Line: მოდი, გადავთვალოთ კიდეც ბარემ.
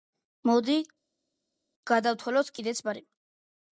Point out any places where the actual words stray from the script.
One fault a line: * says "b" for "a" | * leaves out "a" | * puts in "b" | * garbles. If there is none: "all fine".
all fine